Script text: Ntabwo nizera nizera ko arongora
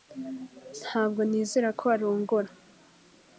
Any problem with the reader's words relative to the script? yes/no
yes